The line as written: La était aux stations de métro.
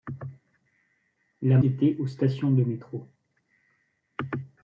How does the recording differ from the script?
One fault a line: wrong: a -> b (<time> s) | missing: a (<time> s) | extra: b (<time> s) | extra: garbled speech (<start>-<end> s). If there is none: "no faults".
no faults